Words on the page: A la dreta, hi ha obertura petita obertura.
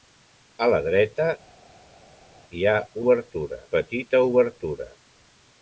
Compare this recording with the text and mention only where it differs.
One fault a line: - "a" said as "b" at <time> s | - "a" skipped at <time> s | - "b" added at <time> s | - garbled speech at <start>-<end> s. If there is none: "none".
none